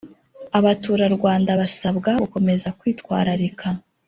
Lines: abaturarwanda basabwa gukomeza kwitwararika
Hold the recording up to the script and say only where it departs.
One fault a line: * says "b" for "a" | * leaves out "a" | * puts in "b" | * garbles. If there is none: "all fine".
all fine